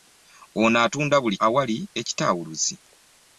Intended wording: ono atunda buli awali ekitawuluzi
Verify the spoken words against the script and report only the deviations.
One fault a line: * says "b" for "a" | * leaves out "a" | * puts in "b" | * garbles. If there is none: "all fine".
all fine